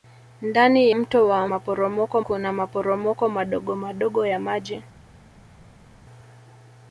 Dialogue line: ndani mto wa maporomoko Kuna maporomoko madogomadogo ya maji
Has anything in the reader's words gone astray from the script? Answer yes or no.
no